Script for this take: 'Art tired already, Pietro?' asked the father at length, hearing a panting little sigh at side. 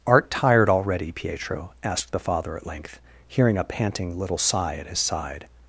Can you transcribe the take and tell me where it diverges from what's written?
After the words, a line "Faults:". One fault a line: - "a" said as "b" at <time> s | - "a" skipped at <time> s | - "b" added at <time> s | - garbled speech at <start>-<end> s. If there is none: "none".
'Art tired already, Pietro?' asked the father at length, hearing a panting little sigh at his side.
Faults:
- "his" added at 4.9 s